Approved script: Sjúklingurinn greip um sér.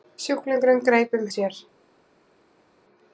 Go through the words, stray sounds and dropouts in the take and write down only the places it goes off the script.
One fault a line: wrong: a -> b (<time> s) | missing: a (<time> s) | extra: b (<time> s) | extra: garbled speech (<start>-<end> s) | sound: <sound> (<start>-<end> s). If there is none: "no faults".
no faults